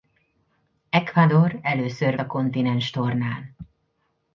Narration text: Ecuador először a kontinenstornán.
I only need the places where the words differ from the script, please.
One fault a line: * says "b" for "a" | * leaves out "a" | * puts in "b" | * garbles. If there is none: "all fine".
all fine